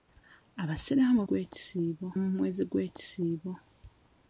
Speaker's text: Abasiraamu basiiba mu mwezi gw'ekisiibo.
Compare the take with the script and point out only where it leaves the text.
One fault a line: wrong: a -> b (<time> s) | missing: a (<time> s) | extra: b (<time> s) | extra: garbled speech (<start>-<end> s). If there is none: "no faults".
wrong: basiiba -> gw'ekisiibo (1.3 s)